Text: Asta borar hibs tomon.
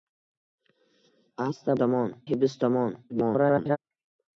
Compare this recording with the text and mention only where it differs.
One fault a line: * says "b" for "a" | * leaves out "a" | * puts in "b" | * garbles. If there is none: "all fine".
* says "tomon" for "borar"
* garbles